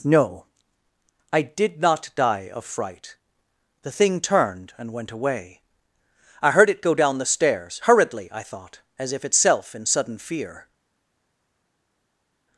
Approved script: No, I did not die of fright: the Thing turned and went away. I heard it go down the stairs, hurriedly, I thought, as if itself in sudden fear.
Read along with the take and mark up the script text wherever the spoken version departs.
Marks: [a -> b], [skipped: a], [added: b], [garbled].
No, I did not die of fright: the Thing turned and went away. I heard it go down the stairs, hurriedly, I thought, as if itself in sudden fear.